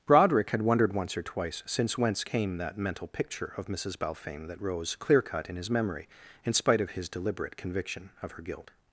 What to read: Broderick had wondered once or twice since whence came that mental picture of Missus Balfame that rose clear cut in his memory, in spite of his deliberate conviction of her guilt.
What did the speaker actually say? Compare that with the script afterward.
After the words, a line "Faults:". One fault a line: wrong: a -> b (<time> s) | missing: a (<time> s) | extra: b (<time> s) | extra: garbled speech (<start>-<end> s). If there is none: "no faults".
Broderick had wondered once or twice since whence came that mental picture of Missus Balfame that rose clear cut in his memory, in spite of his deliberate conviction of her guilt.
Faults:
no faults